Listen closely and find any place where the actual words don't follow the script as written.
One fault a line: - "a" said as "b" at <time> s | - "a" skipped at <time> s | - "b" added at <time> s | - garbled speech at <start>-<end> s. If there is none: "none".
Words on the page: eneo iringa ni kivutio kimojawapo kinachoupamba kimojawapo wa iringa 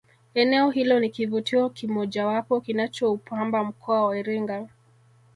- "iringa" said as "hilo" at 0.7 s
- "kimojawapo" said as "mkoa" at 3.6 s